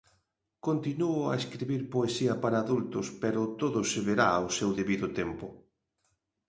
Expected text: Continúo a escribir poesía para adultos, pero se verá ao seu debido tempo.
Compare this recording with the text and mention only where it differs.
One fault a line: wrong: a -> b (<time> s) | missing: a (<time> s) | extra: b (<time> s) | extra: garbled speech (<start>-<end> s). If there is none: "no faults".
extra: todo (3.6 s)